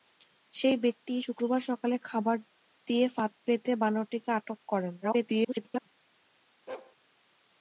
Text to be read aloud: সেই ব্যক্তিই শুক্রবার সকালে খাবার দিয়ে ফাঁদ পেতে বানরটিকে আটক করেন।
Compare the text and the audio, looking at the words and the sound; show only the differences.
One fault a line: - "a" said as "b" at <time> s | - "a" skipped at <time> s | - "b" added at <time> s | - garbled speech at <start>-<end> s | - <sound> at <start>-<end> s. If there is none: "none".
- garbled speech at 5.0-5.9 s
- bark at 6.7-7.0 s